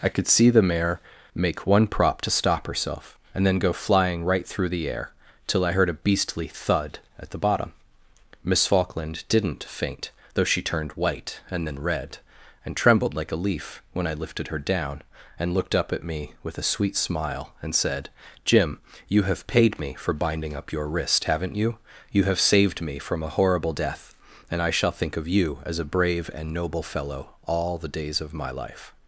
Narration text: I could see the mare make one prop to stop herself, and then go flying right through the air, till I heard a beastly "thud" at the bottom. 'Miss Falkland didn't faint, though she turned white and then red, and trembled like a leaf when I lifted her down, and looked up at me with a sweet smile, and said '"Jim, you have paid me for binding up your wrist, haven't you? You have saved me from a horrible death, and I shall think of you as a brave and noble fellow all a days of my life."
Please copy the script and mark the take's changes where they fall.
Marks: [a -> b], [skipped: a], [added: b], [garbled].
I could see the mare make one prop to stop herself, and then go flying right through the air, till I heard a beastly "thud" at the bottom. 'Miss Falkland didn't faint, though she turned white and then red, and trembled like a leaf when I lifted her down, and looked up at me with a sweet smile, and said '"Jim, you have paid me for binding up your wrist, haven't you? You have saved me from a horrible death, and I shall think of you as a brave and noble fellow all [a -> the] days of my life."